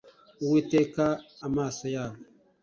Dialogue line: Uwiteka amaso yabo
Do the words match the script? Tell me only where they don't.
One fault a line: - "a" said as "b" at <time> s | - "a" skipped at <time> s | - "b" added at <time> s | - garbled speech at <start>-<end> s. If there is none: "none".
none